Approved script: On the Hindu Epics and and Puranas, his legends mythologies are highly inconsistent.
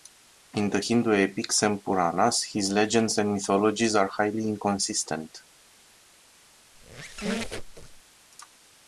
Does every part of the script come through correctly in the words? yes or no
no